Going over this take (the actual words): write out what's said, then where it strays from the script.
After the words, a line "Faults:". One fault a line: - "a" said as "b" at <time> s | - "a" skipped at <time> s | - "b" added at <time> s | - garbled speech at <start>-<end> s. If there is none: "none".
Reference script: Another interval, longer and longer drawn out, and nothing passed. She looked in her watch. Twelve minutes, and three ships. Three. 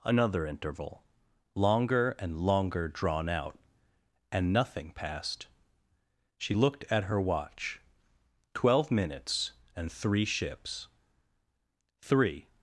Another interval, longer and longer drawn out, and nothing passed. She looked at her watch. Twelve minutes, and three ships. Three.
Faults:
- "in" said as "at" at 6.9 s